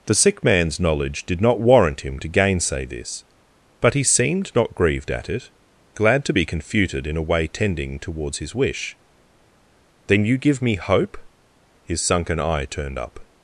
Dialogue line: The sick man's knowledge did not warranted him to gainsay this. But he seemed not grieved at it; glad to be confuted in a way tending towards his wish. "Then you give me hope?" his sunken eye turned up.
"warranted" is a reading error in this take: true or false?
true